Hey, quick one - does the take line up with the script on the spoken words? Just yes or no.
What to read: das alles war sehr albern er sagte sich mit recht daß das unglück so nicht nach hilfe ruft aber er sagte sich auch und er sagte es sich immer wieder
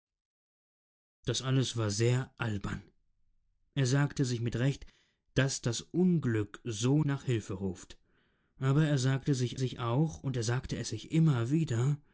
no